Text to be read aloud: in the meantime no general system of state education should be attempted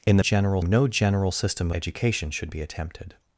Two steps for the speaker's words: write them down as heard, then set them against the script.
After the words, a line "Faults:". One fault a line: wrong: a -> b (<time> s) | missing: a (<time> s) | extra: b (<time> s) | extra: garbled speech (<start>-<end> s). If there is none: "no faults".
in the general no general system education should be attempted
Faults:
wrong: meantime -> general (0.2 s)
missing: of state (1.7 s)